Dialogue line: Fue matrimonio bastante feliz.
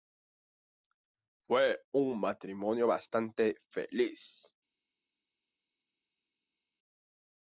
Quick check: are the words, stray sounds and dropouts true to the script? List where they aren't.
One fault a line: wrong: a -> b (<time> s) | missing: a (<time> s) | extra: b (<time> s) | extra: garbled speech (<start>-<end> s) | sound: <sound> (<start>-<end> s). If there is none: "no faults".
extra: un (1.9 s)